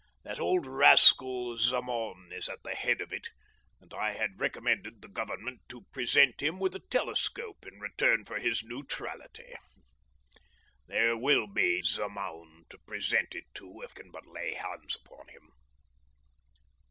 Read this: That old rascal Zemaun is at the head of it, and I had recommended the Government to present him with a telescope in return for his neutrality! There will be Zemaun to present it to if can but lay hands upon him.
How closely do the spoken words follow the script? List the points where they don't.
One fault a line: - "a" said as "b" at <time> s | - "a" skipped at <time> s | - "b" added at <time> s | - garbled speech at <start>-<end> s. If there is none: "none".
none